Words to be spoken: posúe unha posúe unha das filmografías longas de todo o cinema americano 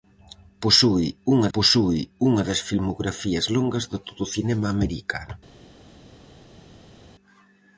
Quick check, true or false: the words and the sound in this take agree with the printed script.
true